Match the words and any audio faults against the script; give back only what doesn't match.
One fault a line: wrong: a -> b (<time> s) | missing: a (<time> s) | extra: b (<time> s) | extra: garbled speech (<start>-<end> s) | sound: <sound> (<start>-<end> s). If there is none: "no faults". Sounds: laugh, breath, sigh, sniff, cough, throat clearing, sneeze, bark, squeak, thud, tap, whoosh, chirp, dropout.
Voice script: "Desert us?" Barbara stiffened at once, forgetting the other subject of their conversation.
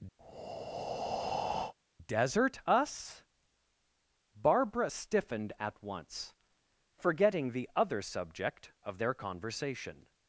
sound: breath (0.2-1.7 s)